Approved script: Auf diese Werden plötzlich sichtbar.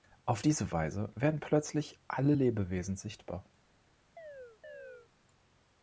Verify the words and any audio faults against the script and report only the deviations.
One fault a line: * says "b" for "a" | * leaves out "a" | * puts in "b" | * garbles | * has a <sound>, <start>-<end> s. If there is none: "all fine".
* puts in "Weise"
* puts in "alle Lebewesen"
* has a chirp, 4.2-5.1 s